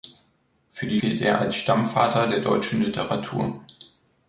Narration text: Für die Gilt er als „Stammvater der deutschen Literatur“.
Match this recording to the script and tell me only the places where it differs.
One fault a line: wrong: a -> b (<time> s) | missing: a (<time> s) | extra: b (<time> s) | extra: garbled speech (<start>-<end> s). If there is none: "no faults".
no faults